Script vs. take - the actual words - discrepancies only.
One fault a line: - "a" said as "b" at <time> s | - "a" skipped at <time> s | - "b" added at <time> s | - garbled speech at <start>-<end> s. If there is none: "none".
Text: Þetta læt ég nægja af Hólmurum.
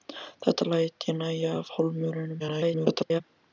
- garbled speech at 2.4-3.2 s